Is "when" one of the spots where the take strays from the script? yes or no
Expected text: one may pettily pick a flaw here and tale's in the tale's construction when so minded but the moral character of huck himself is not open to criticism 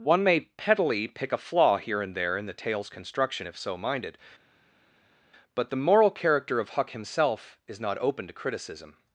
yes